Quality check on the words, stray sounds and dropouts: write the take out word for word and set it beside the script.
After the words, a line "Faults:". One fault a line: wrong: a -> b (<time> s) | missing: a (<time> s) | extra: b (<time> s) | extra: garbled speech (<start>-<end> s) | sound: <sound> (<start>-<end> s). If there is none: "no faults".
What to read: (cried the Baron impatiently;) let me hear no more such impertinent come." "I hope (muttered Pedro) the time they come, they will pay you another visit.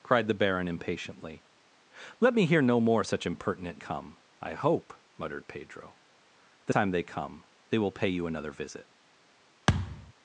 (cried the Baron impatiently;) let me hear no more such impertinent come." "I hope (muttered Pedro) the time they come, they will pay you another visit.
Faults:
sound: thud (9.7-10.1 s)